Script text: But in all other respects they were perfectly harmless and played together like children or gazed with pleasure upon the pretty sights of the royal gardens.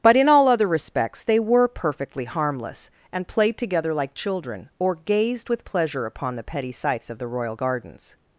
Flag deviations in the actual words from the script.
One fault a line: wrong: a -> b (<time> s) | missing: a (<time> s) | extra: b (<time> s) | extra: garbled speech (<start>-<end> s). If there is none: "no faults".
wrong: pretty -> petty (6.4 s)